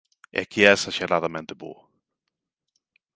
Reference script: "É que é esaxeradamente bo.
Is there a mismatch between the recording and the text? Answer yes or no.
no